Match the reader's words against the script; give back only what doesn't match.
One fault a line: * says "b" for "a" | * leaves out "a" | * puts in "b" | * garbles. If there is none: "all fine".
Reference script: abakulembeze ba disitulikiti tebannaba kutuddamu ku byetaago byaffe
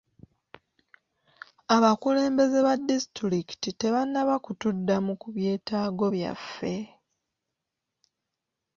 all fine